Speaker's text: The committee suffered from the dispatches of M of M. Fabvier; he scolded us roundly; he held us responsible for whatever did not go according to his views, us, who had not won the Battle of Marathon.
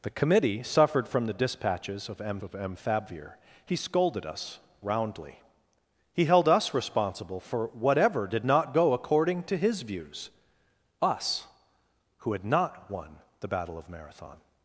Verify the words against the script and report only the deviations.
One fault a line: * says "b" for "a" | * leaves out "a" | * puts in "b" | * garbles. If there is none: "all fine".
all fine